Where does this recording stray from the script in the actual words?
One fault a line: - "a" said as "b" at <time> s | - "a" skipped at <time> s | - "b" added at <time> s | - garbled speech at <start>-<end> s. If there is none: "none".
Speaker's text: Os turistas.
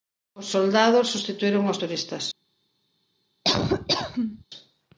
- "soldados substituíron aos" added at 0.5 s